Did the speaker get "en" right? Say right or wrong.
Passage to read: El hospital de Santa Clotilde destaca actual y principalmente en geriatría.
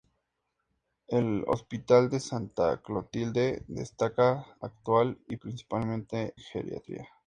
wrong